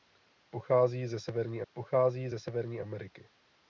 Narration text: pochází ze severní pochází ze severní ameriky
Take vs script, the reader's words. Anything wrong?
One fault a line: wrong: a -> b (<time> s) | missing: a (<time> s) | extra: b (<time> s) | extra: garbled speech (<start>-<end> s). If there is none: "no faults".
no faults